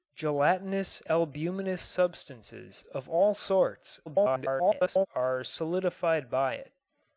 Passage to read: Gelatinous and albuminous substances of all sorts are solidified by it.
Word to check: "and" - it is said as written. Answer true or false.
false